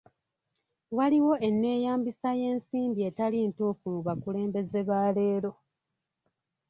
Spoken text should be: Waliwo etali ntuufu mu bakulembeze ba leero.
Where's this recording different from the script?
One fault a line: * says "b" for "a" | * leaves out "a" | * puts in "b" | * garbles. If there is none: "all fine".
* puts in "enneeyambisa y'ensimbi"